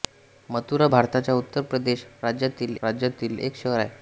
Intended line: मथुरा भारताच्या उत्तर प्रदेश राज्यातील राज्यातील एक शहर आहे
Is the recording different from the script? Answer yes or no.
no